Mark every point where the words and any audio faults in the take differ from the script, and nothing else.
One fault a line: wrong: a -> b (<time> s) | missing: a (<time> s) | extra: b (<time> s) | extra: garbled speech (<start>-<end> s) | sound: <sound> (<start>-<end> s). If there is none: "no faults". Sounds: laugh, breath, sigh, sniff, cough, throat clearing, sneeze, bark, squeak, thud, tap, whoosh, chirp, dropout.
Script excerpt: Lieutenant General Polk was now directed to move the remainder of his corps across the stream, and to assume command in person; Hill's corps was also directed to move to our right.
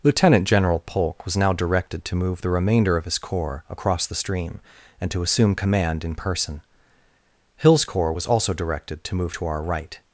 no faults